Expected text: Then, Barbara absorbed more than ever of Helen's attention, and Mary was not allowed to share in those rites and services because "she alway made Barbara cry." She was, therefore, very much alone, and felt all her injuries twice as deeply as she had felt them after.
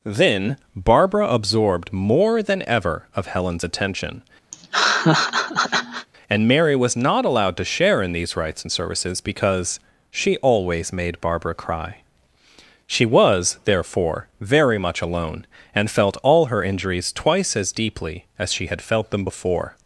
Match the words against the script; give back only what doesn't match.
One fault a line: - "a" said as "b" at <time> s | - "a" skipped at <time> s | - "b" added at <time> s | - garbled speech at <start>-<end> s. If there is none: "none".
- "those" said as "these" at 8.1 s
- "alway" said as "always" at 10.4 s
- "after" said as "before" at 19.2 s